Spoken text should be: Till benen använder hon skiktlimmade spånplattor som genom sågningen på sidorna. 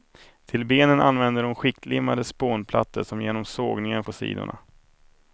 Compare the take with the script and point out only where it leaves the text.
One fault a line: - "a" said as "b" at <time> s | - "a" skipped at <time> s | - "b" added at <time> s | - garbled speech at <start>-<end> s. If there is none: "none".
none